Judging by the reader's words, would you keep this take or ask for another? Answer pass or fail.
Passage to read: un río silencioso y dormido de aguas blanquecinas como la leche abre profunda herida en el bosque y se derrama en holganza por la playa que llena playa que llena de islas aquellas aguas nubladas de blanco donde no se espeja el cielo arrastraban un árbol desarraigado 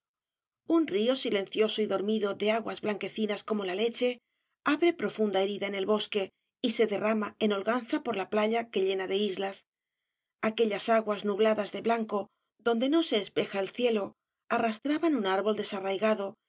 fail